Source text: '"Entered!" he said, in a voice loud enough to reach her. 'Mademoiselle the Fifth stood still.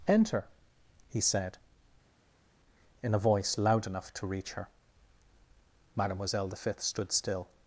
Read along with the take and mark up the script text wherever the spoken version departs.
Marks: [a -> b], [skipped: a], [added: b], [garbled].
['"Entered!" -> Enter] he said, in a voice loud enough to reach her. 'Mademoiselle the Fifth stood still.